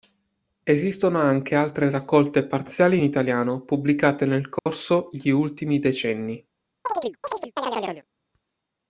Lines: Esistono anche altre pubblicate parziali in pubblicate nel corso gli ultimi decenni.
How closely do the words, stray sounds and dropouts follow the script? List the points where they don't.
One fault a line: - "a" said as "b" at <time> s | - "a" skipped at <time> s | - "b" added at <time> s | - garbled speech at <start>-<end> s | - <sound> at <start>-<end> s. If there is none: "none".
- "pubblicate" said as "raccolte" at 1.9 s
- "italiano" added at 3.0 s
- dropout at 4.6-4.7 s
- chirp at 6.9-8.1 s